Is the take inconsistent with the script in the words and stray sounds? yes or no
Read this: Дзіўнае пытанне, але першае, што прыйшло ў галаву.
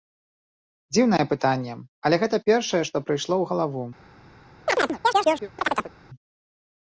yes